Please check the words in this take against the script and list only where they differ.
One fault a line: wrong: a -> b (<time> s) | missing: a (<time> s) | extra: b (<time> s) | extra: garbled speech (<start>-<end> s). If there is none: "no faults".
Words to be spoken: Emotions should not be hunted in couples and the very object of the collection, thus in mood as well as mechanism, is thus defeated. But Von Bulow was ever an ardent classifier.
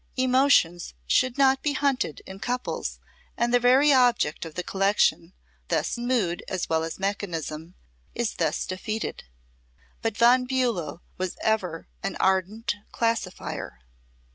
no faults